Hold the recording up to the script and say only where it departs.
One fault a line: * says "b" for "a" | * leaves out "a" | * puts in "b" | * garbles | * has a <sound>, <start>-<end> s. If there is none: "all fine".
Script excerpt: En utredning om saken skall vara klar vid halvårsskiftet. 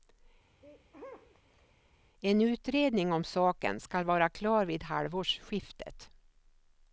* has a sneeze, 0.6-1.7 s